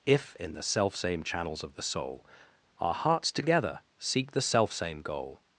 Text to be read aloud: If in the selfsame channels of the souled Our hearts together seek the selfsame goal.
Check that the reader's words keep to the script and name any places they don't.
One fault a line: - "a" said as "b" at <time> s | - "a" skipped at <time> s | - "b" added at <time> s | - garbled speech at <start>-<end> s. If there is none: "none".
- "souled" said as "soul" at 1.8 s